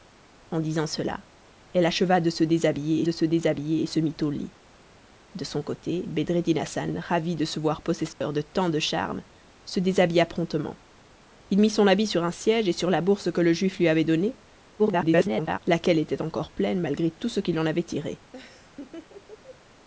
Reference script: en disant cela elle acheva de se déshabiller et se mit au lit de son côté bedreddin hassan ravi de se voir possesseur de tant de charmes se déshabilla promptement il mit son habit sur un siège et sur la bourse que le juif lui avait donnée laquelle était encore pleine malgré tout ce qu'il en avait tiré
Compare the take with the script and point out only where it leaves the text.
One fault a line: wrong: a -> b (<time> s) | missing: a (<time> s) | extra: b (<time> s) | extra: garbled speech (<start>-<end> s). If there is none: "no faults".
extra: de se déshabiller (3.0 s)
extra: garbled speech (14.8-15.6 s)